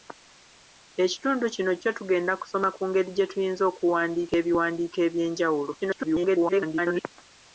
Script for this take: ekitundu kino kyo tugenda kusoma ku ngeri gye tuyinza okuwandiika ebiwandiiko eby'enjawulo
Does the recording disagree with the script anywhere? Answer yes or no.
yes